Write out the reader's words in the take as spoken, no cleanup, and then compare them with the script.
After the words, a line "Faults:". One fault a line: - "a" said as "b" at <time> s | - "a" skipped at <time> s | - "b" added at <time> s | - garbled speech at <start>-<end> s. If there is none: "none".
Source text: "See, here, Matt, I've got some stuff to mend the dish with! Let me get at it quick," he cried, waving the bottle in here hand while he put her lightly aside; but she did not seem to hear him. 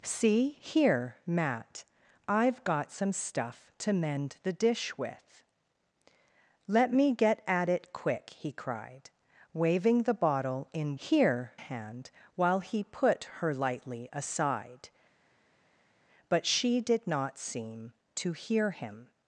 "See, here, Matt, I've got some stuff to mend the dish with! Let me get at it quick," he cried, waving the bottle in here hand while he put her lightly aside; but she did not seem to hear him.
Faults:
none